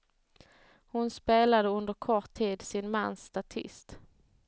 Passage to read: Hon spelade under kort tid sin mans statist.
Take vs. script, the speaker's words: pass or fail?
pass